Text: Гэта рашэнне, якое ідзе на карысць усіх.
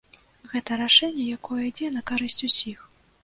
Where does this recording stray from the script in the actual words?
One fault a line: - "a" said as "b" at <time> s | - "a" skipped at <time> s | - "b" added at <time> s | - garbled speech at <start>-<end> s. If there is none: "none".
none